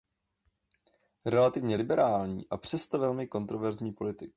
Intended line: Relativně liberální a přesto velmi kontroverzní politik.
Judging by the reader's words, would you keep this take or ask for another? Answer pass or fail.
pass